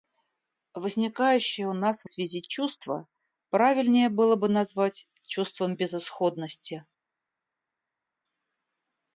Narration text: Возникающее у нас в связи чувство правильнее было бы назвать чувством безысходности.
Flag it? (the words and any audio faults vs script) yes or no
no